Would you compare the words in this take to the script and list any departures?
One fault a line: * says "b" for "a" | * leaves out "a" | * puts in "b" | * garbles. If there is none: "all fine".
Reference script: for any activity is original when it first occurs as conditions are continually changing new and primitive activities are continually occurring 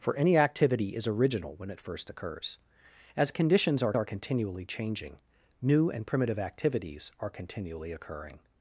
* puts in "are"